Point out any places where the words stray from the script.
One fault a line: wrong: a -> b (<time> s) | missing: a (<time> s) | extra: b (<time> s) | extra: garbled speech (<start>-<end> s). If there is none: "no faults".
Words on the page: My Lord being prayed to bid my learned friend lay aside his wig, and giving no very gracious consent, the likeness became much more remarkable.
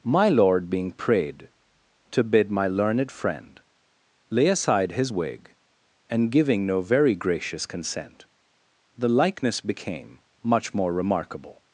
no faults